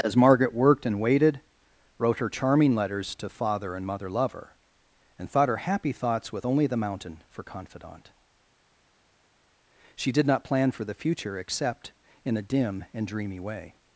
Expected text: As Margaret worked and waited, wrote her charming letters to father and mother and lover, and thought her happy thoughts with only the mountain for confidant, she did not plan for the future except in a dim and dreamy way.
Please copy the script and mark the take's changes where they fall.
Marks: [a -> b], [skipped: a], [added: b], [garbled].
As Margaret worked and waited, wrote her charming letters to father and mother [skipped: and] lover, and thought her happy thoughts with only the mountain for confidant, she did not plan for the future except in a dim and dreamy way.